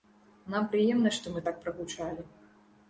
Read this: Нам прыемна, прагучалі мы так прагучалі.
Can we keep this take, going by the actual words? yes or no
no